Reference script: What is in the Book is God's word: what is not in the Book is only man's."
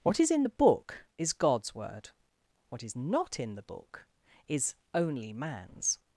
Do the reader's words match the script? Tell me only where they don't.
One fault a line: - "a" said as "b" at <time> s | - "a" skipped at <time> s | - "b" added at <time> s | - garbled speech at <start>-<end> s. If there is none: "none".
none